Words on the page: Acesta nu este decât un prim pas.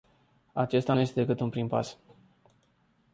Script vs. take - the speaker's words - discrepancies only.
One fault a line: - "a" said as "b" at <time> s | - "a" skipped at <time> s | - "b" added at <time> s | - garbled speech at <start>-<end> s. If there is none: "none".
none